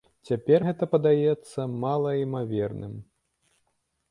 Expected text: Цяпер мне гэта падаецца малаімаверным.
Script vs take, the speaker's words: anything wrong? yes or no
yes